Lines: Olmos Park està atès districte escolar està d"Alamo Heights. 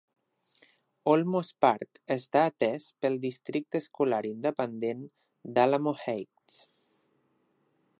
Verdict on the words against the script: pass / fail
fail